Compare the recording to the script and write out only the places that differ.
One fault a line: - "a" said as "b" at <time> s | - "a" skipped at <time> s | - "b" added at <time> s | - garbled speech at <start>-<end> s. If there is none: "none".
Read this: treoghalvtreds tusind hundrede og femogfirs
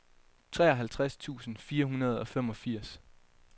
- "fire" added at 1.6 s